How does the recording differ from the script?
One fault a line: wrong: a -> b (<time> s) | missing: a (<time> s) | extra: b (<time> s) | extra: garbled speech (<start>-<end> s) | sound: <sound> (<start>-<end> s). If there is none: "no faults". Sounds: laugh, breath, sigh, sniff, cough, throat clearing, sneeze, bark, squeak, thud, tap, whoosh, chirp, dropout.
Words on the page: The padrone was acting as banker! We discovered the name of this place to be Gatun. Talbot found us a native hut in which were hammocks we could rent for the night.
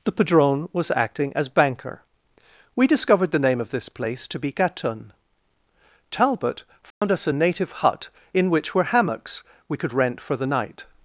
sound: dropout (6.9-7.0 s)